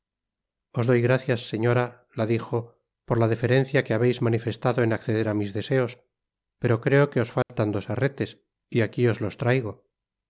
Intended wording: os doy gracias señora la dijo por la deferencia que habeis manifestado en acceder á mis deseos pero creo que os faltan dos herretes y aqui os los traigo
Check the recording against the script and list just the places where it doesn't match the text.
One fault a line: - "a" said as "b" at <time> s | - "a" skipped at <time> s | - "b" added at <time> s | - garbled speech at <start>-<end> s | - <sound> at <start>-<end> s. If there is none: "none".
- dropout at 7.4-7.5 s